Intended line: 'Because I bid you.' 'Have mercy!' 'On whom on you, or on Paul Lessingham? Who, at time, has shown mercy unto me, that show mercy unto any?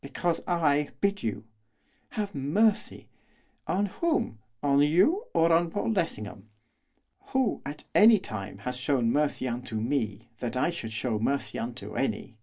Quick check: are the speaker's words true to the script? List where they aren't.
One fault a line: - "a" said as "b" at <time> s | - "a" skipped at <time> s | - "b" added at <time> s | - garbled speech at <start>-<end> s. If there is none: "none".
- "any" added at 7.9 s
- "I should" added at 10.5 s